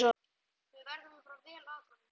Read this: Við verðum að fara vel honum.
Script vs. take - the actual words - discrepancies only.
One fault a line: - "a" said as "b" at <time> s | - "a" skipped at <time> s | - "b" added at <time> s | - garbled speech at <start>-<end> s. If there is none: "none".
- "að" added at 1.6 s